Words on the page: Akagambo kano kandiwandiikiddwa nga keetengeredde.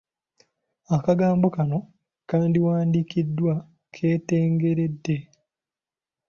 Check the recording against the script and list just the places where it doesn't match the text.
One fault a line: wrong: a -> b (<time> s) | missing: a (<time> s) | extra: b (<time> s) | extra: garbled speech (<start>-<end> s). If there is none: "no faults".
missing: nga (3.5 s)